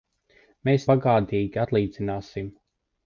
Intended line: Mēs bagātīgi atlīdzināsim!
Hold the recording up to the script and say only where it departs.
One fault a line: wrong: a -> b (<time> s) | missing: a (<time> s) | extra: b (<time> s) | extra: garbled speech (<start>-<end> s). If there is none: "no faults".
no faults